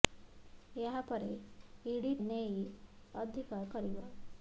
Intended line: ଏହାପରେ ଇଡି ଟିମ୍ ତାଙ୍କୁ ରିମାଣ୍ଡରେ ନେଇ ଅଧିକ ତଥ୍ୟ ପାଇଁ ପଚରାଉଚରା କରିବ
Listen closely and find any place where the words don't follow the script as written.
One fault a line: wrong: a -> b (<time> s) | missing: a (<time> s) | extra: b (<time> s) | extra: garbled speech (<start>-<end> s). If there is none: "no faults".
missing: ଟିମ୍ ତାଙ୍କୁ ରିମାଣ୍ଡରେ (2.1 s)
missing: ତଥ୍ୟ ପାଇଁ ପଚରାଉଚରା (3.6 s)